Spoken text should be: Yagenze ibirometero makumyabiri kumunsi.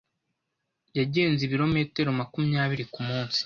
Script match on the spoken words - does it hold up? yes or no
yes